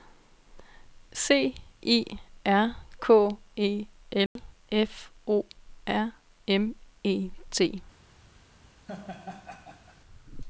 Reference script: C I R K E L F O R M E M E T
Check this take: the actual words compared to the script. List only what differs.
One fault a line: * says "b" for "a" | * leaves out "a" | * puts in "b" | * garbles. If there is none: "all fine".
* leaves out "M E"